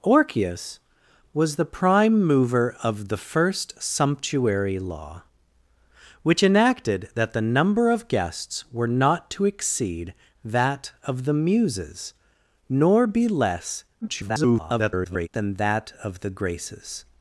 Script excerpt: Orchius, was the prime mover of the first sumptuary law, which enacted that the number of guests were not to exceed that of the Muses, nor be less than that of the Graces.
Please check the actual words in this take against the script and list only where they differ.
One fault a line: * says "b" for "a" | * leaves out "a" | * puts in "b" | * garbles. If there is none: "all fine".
* garbles